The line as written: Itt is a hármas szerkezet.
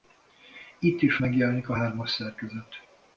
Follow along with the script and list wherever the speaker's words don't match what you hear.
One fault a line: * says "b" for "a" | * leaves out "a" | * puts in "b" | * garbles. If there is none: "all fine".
* puts in "megjelenik"